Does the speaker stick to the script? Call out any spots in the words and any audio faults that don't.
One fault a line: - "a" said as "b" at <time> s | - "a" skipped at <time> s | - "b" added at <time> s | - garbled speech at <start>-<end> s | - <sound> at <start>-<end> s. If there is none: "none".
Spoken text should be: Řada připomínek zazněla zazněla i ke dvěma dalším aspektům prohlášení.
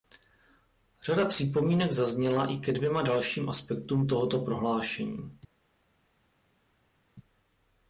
- "zazněla" skipped at 2.5 s
- "tohoto" added at 4.1 s